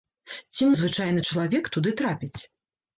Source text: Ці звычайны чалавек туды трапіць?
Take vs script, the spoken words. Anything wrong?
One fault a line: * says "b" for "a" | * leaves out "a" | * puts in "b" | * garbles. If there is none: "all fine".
all fine